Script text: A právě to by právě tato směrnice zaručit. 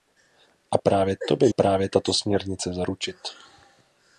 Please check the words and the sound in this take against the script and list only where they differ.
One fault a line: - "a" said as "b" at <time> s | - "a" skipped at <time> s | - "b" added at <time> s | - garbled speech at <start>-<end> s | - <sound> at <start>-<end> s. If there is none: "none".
none